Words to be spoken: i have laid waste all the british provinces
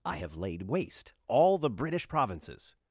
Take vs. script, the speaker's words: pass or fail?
pass